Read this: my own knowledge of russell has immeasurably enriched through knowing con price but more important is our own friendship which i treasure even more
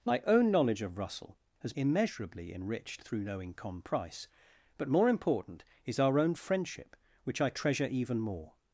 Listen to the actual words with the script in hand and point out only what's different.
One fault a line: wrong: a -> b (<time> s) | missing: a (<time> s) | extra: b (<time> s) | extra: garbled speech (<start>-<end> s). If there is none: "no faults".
no faults